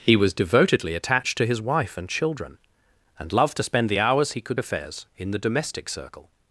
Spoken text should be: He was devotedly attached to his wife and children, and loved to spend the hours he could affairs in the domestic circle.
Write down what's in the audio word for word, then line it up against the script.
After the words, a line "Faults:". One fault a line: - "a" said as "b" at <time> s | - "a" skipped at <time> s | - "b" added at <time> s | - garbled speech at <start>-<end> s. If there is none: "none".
He was devotedly attached to his wife and children, and loved to spend the hours he could affairs in the domestic circle.
Faults:
none